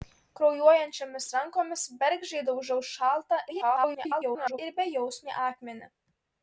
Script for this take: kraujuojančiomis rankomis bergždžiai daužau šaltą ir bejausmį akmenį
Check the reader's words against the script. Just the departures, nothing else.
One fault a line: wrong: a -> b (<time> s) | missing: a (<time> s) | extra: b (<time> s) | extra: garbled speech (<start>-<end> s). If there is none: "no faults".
extra: garbled speech (3.5-4.6 s)